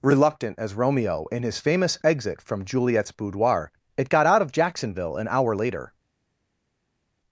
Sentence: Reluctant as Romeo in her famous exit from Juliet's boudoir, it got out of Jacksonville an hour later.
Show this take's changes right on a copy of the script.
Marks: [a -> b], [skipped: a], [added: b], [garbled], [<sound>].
Reluctant as Romeo in [her -> his] famous exit from Juliet's boudoir, it got out of Jacksonville an hour later.